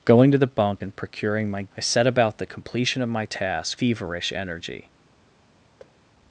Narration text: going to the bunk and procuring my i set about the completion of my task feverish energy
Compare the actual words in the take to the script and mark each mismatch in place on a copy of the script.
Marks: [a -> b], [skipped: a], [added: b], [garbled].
going to the bunk and procuring my i set about the completion of my task feverish energy